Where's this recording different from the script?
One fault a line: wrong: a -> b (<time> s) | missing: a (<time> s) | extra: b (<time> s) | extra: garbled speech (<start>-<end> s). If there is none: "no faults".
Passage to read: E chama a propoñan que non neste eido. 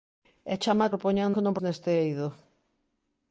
no faults